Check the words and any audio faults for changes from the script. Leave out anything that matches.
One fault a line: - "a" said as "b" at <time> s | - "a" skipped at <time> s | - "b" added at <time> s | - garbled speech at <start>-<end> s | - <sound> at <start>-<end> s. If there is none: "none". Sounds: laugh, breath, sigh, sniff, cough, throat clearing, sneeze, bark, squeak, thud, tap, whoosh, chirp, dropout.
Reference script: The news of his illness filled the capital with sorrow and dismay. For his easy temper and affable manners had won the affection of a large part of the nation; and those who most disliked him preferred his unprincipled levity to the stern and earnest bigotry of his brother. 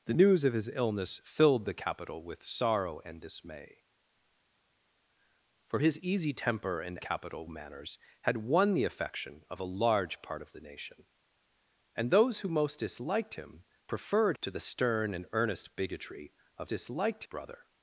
- "affable" said as "capital" at 7.0 s
- "his unprincipled levity" skipped at 14.4 s
- "his" said as "disliked" at 16.7 s